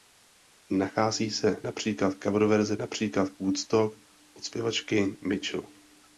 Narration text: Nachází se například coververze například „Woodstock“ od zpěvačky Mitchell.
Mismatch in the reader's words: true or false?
false